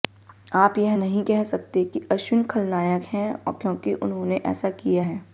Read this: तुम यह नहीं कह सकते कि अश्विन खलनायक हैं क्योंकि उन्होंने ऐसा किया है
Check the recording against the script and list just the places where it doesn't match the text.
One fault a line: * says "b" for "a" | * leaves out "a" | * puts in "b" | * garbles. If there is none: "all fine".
* says "आप" for "तुम"